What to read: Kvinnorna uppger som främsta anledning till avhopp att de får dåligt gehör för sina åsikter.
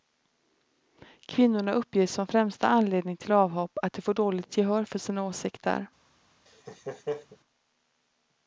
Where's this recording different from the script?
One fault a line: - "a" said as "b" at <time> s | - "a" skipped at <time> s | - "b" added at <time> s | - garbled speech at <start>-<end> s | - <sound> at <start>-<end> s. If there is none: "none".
- laugh at 6.5-7.4 s